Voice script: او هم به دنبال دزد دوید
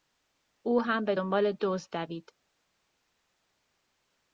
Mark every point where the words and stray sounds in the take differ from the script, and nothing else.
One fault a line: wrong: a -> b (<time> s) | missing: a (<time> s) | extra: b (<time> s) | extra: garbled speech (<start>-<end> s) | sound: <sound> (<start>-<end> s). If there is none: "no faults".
no faults